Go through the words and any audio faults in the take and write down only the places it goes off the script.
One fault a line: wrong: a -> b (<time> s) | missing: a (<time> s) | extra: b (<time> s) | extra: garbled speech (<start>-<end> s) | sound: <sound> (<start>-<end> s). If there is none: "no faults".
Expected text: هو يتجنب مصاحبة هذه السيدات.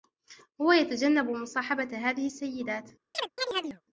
sound: chirp (3.1-3.8 s)